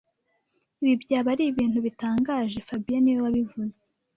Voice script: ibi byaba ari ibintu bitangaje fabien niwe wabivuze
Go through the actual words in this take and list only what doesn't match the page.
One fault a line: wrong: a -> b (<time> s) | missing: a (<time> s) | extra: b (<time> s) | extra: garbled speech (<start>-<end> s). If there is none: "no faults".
no faults